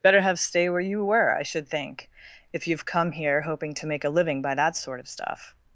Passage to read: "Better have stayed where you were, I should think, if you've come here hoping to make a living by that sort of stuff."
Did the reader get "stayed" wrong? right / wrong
wrong